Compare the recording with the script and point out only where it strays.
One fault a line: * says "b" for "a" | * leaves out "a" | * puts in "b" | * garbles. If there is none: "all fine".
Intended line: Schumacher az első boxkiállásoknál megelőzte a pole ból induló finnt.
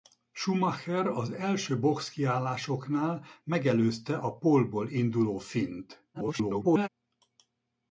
* garbles